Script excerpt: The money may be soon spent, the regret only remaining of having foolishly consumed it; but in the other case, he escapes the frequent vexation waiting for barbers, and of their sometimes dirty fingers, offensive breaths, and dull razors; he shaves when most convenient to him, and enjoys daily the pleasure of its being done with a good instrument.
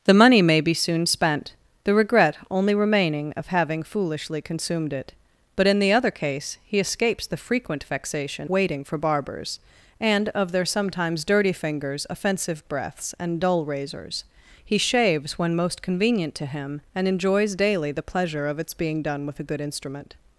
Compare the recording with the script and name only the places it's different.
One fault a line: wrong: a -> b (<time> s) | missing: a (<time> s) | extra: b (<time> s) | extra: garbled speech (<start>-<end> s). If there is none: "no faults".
no faults